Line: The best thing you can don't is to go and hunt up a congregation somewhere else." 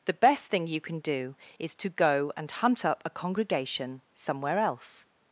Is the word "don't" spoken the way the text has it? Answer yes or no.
no